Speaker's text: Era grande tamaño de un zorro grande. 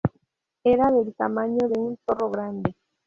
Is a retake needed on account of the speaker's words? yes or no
yes